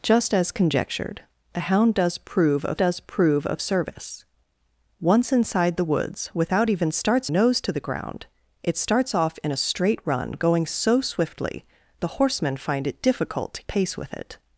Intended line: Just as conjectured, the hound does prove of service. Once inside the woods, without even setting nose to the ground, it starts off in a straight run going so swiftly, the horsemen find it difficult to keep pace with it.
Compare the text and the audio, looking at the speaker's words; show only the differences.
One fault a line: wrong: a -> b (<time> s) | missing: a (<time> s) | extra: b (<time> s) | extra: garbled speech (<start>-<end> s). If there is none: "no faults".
extra: does prove of (2.8 s)
wrong: setting -> starts (6.9 s)
missing: keep (13.6 s)